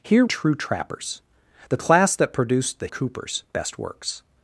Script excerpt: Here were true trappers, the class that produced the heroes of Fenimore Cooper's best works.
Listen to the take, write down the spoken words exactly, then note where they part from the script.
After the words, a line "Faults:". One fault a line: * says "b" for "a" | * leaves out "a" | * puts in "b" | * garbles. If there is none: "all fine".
Here true trappers, the class that produced the Cooper's best works.
Faults:
* leaves out "were"
* leaves out "heroes of Fenimore"